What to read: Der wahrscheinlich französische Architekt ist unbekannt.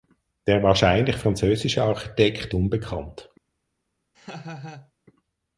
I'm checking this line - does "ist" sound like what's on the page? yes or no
no